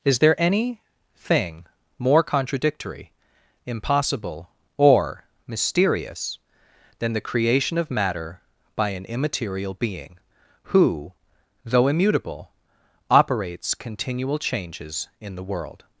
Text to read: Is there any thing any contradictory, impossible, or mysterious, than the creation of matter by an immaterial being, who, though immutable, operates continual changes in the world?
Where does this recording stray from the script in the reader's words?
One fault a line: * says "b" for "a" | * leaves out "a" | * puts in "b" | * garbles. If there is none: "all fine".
* says "more" for "any"